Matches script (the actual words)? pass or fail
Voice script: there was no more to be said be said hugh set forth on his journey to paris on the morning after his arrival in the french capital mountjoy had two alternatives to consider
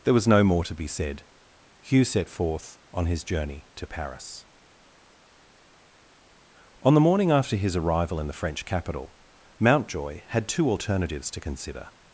fail